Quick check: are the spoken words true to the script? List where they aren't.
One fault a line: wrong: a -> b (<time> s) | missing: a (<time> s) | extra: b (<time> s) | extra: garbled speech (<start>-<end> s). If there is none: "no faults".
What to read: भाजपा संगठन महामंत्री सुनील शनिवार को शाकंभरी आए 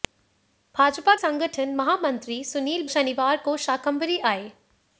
no faults